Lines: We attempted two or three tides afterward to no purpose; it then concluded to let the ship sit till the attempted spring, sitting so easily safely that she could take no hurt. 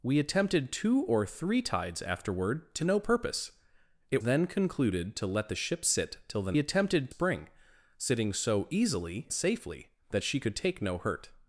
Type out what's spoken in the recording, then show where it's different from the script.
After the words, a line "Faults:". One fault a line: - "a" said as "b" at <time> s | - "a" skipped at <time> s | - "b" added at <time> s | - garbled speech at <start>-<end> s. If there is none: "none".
We attempted two or three tides afterward to no purpose; it then concluded to let the ship sit till the attempted spring, sitting so easily safely that she could take no hurt.
Faults:
none